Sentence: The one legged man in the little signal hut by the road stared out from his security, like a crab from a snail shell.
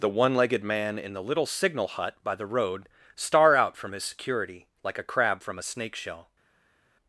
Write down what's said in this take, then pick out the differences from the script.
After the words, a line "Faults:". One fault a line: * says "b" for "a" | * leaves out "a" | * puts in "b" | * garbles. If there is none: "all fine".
The one legged man in the little signal hut by the road star out from his security, like a crab from a snake shell.
Faults:
* says "star" for "stared"
* says "snake" for "snail"